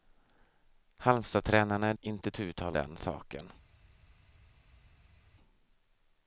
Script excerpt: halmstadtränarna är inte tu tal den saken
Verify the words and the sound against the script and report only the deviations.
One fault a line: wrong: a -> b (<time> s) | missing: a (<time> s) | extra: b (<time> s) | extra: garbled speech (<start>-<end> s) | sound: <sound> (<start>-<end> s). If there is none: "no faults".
no faults